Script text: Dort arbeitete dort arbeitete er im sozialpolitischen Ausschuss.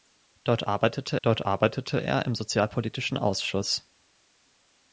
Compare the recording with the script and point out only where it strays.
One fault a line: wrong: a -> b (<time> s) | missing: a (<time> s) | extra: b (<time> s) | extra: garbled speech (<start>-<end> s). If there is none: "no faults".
no faults